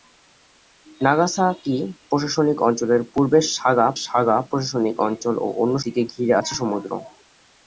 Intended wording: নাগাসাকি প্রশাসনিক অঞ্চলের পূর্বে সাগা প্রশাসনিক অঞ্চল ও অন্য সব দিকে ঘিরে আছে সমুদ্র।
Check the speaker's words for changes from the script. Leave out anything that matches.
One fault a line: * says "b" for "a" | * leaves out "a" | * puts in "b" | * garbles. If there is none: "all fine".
* puts in "সাগা"
* leaves out "সব"